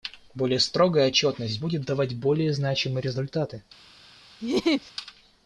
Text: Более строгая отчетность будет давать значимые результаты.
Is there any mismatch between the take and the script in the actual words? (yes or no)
yes